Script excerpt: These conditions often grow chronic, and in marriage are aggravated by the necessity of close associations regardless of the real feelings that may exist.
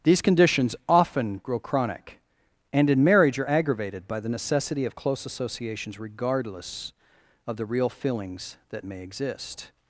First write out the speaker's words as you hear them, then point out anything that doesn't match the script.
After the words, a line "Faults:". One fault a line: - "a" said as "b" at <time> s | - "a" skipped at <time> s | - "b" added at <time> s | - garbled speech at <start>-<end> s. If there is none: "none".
These conditions often grow chronic, and in marriage are aggravated by the necessity of close associations regardless of the real feelings that may exist.
Faults:
none